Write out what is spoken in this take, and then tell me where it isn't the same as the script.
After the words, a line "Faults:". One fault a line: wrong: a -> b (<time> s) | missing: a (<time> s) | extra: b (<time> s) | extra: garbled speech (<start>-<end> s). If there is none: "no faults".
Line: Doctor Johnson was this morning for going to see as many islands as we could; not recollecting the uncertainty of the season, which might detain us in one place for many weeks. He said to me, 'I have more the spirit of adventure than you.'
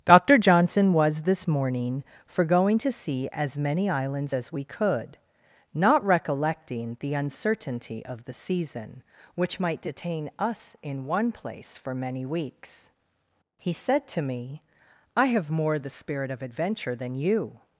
Doctor Johnson was this morning for going to see as many islands as we could; not recollecting the uncertainty of the season, which might detain us in one place for many weeks. He said to me, 'I have more the spirit of adventure than you.'
Faults:
no faults